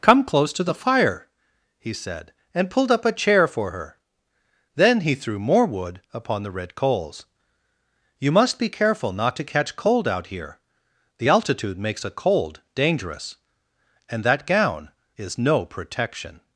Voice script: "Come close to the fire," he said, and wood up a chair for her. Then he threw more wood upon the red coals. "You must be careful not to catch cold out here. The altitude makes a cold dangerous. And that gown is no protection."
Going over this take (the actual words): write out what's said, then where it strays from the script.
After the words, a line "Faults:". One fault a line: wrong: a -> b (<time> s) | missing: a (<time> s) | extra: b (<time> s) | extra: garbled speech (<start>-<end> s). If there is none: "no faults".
"Come close to the fire," he said, and pulled up a chair for her. Then he threw more wood upon the red coals. "You must be careful not to catch cold out here. The altitude makes a cold dangerous. And that gown is no protection."
Faults:
wrong: wood -> pulled (2.7 s)